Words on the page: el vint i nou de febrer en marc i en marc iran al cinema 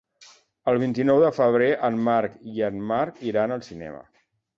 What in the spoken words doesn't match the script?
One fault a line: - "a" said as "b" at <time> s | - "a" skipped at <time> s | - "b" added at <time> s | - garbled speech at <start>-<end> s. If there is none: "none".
none